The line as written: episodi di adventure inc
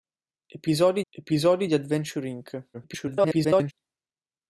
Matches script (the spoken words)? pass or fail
fail